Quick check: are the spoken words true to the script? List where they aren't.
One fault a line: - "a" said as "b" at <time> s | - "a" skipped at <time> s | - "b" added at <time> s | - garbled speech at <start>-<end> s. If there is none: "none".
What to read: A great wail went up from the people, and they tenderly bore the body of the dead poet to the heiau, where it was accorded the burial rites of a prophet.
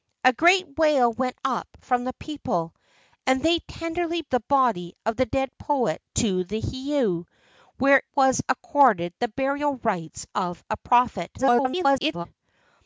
- "bore" skipped at 4.2 s
- "it" skipped at 8.0 s
- garbled speech at 11.4-12.3 s